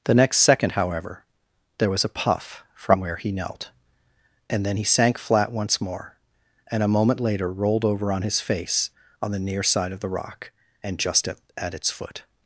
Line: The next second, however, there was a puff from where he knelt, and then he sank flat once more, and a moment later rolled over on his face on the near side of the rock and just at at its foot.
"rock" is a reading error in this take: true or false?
false